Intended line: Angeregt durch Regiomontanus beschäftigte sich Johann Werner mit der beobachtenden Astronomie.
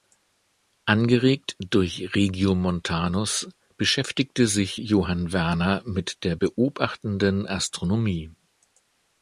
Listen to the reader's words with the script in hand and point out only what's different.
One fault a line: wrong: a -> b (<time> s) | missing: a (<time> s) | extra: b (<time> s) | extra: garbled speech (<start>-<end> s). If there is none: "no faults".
no faults